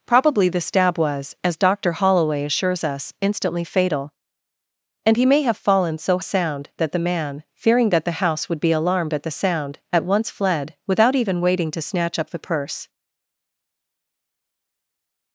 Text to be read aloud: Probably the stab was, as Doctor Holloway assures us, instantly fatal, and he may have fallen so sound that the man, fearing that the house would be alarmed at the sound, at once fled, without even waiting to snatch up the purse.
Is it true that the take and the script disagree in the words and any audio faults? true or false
false